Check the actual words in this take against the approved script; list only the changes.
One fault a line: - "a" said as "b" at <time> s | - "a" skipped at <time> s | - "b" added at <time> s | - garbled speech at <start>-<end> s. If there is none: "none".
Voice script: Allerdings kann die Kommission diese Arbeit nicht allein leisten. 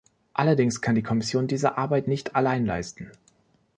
none